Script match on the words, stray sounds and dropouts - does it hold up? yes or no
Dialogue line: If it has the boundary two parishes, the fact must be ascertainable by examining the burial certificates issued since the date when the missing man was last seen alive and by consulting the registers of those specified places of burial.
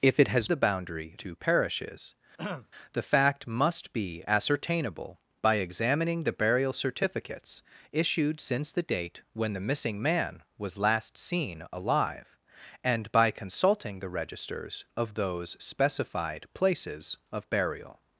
no